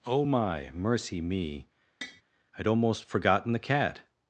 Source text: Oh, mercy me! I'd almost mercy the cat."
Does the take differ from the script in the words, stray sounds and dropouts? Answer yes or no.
yes